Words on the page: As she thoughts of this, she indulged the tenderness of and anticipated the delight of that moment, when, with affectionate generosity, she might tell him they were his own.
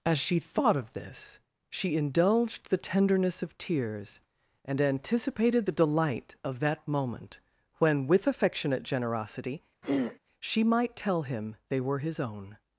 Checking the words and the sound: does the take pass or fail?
fail